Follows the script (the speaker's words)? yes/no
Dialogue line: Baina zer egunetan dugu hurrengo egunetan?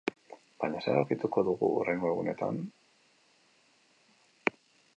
no